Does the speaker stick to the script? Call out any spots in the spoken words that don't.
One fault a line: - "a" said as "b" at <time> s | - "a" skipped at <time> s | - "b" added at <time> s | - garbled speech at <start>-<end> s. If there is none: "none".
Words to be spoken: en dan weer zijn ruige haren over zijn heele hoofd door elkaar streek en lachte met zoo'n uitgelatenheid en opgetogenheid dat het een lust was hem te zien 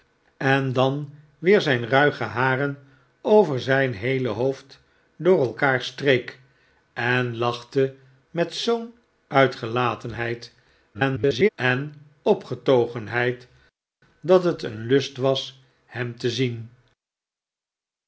- garbled speech at 10.9-11.5 s